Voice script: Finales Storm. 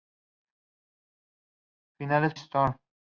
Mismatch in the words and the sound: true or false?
false